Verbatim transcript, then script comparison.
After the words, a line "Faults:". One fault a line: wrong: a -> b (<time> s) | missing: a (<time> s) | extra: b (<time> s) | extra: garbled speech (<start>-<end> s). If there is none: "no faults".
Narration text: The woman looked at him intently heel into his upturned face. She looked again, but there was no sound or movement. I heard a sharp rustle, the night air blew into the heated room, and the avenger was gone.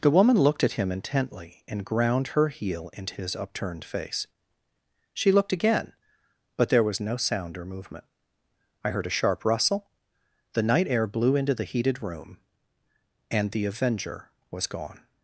The woman looked at him intently and ground her heel into his upturned face. She looked again, but there was no sound or movement. I heard a sharp rustle, the night air blew into the heated room, and the avenger was gone.
Faults:
extra: and ground her (1.7 s)